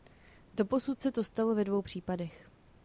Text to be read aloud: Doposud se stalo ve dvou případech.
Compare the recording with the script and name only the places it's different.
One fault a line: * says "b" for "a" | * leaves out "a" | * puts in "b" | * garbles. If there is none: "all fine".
* puts in "to"